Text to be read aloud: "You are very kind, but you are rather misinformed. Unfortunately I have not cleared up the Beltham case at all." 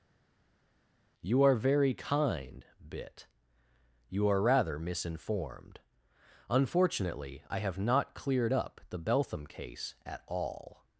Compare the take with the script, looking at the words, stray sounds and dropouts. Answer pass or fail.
fail